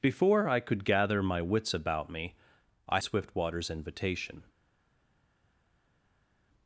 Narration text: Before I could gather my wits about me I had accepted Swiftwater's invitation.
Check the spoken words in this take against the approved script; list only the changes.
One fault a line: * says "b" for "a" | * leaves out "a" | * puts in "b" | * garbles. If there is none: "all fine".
* leaves out "had accepted"